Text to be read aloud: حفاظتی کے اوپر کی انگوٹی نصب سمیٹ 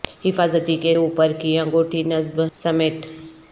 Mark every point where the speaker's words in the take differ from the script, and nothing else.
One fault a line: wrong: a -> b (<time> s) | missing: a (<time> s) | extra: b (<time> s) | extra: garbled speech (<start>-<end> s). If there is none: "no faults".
no faults